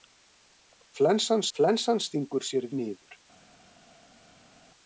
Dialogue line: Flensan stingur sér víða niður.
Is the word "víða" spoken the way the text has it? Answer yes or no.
no